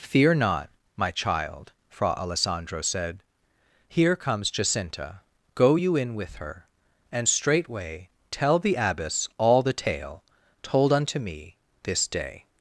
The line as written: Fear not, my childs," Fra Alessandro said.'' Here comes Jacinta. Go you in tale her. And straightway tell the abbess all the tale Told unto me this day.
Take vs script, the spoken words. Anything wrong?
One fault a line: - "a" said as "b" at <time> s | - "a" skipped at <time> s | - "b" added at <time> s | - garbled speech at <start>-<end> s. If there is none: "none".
- "childs" said as "child" at 1.1 s
- "tale" said as "with" at 6.1 s